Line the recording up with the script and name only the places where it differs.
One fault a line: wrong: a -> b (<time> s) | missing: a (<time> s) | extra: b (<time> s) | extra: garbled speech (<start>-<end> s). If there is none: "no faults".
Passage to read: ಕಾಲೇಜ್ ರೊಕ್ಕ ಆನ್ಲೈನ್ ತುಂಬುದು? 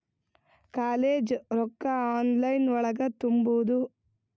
extra: ಒಳಗ (2.7 s)